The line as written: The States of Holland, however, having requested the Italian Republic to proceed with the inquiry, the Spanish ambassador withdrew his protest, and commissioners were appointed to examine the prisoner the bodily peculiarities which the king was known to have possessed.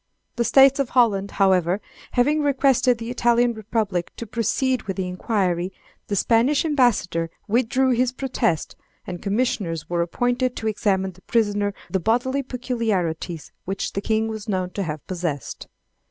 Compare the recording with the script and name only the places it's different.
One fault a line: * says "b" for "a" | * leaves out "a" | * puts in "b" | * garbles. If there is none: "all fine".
all fine